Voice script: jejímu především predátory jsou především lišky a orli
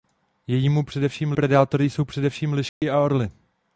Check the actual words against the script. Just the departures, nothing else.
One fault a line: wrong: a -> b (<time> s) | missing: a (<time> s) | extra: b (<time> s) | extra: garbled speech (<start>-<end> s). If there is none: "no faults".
no faults